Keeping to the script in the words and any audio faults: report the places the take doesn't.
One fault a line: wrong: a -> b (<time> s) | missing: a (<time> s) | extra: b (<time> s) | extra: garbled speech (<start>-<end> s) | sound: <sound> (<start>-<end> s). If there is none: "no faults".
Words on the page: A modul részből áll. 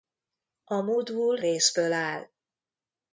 no faults